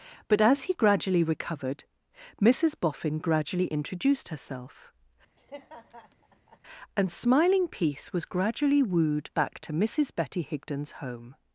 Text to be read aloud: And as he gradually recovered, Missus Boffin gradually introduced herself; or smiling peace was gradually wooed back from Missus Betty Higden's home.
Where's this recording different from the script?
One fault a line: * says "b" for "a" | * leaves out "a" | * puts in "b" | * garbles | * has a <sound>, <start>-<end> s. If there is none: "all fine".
* says "But" for "And"
* has a laugh, 5.4-6.6 s
* says "and" for "or"
* says "to" for "from"